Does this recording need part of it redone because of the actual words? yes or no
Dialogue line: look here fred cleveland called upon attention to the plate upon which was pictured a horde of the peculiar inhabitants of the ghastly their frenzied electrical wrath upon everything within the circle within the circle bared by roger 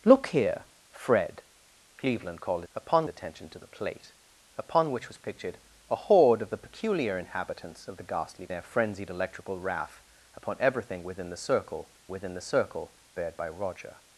no